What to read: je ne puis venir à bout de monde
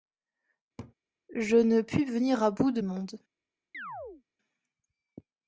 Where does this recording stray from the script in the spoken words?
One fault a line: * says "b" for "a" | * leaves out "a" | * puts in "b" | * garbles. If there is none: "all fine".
all fine